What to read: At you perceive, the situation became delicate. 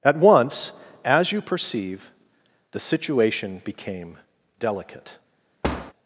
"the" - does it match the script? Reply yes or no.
yes